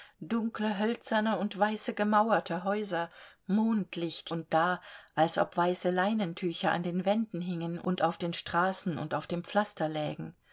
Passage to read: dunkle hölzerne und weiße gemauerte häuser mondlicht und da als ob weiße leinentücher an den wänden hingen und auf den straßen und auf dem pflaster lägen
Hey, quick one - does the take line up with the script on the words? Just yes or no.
yes